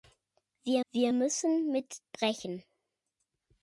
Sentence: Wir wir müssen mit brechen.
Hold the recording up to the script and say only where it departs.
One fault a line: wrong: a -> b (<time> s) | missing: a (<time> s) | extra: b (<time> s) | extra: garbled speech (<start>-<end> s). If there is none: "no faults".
no faults